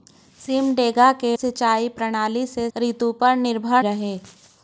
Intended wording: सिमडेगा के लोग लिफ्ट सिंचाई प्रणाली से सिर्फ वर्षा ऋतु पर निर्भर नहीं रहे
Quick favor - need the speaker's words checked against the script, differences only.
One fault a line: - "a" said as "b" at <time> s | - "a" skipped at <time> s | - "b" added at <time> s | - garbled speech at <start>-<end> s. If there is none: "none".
- "लोग लिफ्ट" skipped at 1.4 s
- "सिर्फ वर्षा" skipped at 2.7 s
- "नहीं" skipped at 3.8 s